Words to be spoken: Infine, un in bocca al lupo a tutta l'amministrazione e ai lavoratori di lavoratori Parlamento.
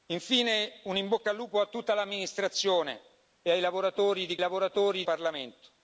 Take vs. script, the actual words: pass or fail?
pass